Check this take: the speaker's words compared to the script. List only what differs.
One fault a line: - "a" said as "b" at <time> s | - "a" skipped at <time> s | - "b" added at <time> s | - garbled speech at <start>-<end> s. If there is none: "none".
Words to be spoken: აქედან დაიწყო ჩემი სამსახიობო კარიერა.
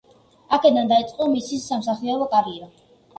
- "ჩემი" said as "მისი" at 1.3 s